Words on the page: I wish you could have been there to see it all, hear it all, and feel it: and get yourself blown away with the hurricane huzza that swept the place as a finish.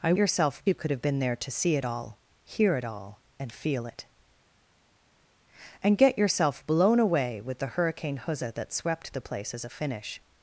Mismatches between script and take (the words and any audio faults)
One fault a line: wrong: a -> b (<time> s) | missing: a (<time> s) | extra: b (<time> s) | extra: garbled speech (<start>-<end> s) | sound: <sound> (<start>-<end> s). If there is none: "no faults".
wrong: wish -> yourself (0.1 s)